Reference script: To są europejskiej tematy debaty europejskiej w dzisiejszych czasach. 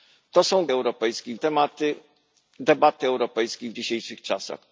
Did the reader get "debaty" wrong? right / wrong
right